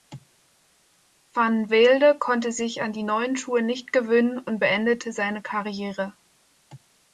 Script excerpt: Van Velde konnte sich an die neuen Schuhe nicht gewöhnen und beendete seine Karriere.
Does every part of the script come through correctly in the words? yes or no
yes